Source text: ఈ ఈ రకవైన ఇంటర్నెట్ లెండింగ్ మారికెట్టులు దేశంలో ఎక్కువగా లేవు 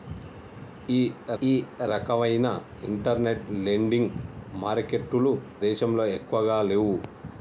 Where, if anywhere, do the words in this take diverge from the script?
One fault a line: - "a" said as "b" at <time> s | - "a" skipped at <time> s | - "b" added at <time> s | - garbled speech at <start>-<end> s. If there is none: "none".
none